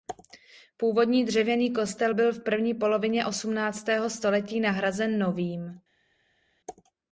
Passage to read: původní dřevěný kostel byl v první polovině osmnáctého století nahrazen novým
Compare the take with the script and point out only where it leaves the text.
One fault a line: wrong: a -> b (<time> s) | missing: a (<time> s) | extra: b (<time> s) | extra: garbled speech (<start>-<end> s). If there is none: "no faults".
no faults